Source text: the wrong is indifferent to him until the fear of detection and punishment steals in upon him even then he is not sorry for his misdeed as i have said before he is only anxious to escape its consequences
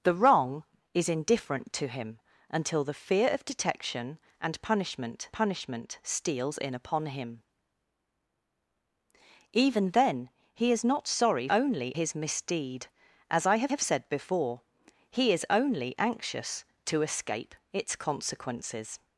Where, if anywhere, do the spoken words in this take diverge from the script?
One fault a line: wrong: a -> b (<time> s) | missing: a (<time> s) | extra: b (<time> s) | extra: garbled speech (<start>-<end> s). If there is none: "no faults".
extra: punishment (5.3 s)
wrong: for -> only (11.5 s)
extra: have (13.7 s)